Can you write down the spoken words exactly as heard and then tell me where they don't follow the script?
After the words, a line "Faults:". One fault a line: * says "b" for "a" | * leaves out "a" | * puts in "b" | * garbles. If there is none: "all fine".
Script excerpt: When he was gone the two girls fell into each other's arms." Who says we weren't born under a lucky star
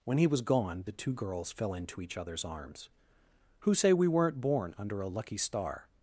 When he was gone the two girls fell into each other's arms." Who say we weren't born under a lucky star
Faults:
* says "say" for "says"